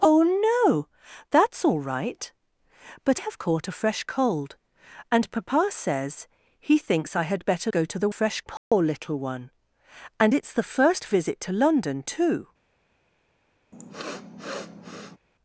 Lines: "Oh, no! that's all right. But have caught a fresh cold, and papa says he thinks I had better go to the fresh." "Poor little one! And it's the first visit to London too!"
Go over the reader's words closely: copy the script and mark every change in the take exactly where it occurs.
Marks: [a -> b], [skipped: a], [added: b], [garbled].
"Oh, no! that's all right. But have caught a fresh cold, and papa says he thinks I had better go to the fresh." "Poor little one! And it's the first visit to London too!"